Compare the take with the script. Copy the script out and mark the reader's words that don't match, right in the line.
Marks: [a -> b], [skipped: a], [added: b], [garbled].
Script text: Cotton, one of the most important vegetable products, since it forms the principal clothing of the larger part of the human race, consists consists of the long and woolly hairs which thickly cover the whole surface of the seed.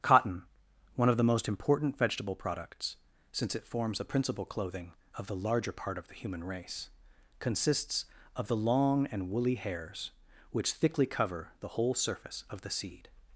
Cotton, one of the most important vegetable products, since it forms the principal clothing of the larger part of the human race, consists [skipped: consists] of the long and woolly hairs which thickly cover the whole surface of the seed.